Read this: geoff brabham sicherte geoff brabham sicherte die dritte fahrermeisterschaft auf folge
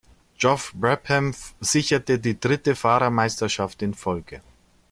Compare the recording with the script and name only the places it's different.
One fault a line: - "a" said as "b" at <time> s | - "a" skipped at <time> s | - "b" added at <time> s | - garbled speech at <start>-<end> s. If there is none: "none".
- "geoff brabham sicherte" skipped at 2.2 s
- "auf" said as "in" at 3.8 s